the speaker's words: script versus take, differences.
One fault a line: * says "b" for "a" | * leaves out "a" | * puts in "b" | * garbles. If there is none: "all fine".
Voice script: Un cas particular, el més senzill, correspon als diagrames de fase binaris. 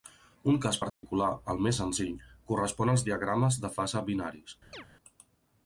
all fine